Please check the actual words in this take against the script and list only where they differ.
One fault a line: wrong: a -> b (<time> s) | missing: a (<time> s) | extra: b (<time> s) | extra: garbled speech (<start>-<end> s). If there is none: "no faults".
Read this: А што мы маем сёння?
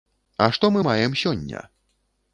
no faults